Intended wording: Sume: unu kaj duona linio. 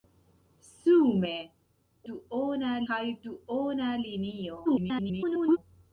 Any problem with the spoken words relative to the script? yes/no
yes